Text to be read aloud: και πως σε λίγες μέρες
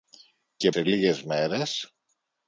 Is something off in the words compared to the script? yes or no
yes